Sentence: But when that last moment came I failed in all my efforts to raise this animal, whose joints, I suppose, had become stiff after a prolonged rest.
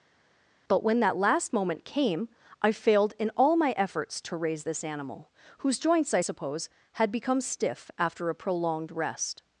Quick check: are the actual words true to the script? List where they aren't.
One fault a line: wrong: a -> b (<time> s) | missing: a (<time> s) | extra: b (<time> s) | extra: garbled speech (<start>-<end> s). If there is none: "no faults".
no faults